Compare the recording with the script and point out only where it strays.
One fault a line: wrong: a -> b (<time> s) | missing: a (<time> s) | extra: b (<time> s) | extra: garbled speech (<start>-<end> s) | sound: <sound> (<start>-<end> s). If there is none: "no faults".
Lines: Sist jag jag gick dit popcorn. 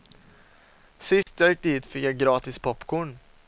sound: dropout (1.2-1.3 s)
missing: jag (1.5 s)
extra: fick jag gratis (1.9 s)